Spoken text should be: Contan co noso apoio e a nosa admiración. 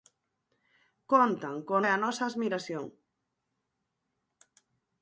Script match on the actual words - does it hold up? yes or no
no